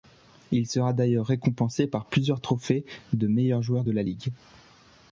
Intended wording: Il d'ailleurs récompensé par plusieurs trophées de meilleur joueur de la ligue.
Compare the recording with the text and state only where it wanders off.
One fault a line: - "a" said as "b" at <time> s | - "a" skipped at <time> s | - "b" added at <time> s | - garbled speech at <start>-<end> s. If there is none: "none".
- "sera" added at 0.6 s